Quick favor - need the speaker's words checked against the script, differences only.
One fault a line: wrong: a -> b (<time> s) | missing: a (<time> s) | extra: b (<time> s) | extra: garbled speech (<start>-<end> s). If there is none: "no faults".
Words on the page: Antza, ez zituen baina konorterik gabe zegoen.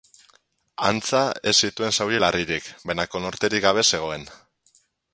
extra: zauri larririk (2.0 s)